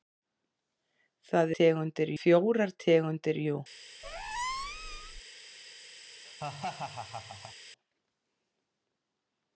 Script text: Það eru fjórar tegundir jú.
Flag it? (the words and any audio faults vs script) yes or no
yes